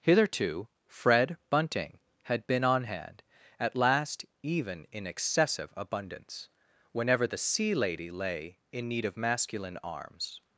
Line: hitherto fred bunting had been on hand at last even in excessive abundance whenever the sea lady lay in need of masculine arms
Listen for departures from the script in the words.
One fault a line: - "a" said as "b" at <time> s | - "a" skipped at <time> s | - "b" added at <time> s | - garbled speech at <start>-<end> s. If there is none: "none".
none